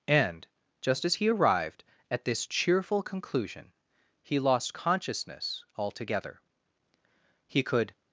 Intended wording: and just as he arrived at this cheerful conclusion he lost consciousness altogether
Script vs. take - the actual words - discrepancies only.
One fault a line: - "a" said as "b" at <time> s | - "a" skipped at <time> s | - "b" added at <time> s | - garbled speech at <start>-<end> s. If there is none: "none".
- "he could" added at 7.5 s